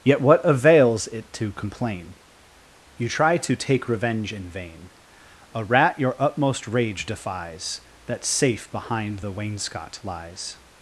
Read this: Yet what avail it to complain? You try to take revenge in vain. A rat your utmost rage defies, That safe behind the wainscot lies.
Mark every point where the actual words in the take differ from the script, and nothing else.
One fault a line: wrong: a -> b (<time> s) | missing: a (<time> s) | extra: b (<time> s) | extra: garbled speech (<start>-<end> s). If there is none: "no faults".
wrong: avail -> avails (0.4 s)